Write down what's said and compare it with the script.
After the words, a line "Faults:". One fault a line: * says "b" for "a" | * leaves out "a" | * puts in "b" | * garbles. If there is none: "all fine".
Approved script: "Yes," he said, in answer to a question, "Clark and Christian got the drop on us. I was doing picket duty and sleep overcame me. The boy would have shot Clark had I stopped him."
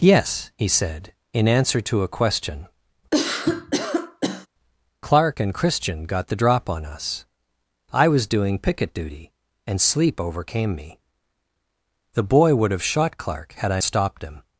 "Yes," he said, in answer to a question, "Clark and Christian got the drop on us. I was doing picket duty and sleep overcame me. The boy would have shot Clark had I stopped him."
Faults:
all fine